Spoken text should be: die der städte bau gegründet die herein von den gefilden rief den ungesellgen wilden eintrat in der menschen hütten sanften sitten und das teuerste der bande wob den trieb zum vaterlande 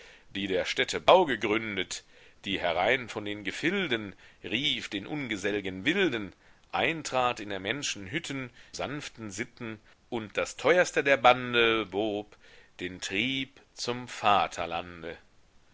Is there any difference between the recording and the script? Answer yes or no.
no